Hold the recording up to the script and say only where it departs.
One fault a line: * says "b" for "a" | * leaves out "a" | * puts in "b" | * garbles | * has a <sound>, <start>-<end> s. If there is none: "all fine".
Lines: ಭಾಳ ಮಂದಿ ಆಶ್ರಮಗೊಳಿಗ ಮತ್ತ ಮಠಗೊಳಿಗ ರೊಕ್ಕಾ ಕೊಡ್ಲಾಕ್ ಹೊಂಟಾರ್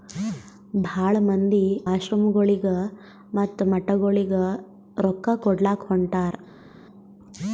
all fine